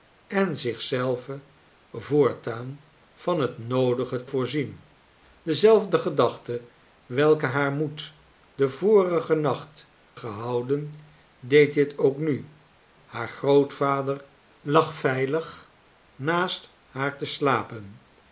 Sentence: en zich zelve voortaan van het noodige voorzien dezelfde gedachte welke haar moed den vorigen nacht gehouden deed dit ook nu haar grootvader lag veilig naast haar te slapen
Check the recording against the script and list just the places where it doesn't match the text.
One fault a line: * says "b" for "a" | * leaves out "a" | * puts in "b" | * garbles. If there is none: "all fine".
all fine